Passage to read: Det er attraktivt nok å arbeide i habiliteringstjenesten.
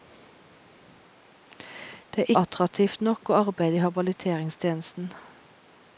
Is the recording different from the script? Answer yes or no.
no